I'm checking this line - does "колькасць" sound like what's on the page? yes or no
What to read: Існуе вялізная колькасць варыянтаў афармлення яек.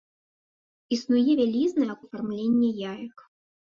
no